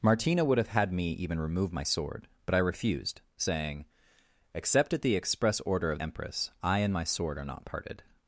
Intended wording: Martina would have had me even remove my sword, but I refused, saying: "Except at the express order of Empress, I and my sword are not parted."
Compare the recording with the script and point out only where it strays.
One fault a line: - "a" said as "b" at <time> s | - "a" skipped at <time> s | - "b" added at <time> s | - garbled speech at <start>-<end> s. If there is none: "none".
none